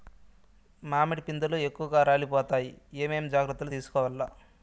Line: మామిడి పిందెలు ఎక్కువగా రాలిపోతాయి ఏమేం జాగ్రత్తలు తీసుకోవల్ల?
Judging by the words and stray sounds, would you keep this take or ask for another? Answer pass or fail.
pass